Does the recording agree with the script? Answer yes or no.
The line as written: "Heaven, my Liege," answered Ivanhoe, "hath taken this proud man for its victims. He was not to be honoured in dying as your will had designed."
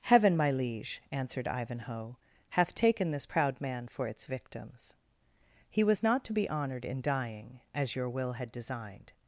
yes